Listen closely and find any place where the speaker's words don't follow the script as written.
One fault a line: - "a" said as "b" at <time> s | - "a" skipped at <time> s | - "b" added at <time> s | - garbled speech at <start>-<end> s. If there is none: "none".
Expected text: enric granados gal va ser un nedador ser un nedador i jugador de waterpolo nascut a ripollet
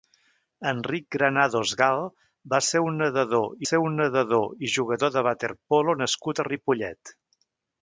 none